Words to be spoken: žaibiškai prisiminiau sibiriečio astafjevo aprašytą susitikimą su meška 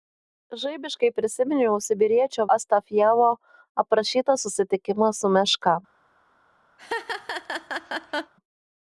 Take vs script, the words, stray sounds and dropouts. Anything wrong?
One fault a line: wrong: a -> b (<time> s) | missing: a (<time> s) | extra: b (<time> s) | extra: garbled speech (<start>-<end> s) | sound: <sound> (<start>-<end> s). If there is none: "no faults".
sound: laugh (6.8-8.3 s)